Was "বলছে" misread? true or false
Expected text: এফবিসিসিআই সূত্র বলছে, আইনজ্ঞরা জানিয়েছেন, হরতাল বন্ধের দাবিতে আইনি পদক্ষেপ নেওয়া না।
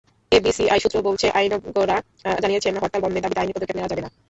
false